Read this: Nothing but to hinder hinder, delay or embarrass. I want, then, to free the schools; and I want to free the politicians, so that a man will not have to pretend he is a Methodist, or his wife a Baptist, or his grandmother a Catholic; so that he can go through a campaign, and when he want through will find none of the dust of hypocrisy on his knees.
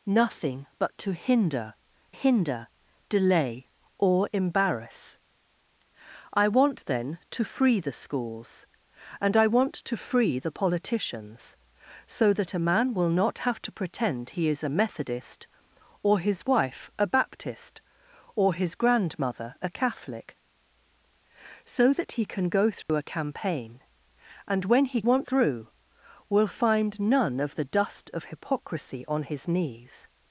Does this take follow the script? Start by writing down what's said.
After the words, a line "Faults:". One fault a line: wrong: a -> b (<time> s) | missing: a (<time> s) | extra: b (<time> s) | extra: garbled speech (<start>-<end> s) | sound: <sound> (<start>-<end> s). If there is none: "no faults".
Nothing but to hinder hinder, delay or embarrass. I want, then, to free the schools; and I want to free the politicians, so that a man will not have to pretend he is a Methodist, or his wife a Baptist, or his grandmother a Catholic; so that he can go through a campaign, and when he want through will find none of the dust of hypocrisy on his knees.
Faults:
sound: dropout (22.8-22.9 s)